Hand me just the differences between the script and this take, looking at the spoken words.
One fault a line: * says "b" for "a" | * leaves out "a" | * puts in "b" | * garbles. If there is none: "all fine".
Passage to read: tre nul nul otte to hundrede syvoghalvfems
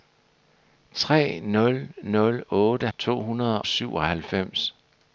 all fine